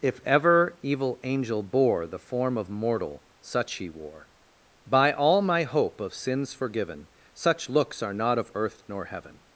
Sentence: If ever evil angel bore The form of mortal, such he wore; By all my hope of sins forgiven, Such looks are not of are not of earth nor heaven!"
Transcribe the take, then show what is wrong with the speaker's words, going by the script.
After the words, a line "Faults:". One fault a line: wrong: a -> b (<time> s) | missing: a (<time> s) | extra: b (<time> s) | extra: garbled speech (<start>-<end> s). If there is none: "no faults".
If ever evil angel bore The form of mortal, such he wore; By all my hope of sins forgiven, Such looks are not of earth nor heaven!"
Faults:
missing: are not of (8.5 s)